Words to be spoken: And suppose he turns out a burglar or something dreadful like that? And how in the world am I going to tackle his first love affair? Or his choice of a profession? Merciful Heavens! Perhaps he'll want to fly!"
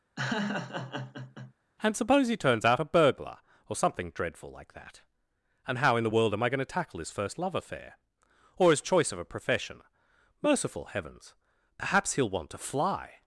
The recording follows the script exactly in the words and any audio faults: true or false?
false